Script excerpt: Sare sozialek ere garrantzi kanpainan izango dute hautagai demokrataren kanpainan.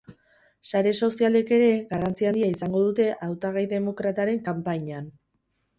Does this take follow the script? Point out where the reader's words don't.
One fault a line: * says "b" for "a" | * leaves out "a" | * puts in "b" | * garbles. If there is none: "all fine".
* says "handia" for "kanpainan"